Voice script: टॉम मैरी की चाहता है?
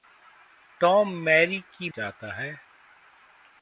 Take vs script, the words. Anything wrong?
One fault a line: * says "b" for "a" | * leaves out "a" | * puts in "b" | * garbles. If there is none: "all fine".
all fine